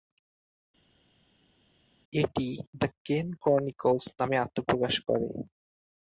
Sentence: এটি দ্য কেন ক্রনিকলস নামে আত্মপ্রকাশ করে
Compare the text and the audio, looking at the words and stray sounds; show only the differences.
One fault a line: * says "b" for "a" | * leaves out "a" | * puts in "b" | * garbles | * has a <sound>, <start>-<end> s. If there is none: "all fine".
all fine